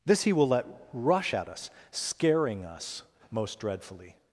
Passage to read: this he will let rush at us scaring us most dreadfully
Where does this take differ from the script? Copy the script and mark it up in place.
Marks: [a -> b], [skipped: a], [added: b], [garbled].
this he will let rush at us scaring us most dreadfully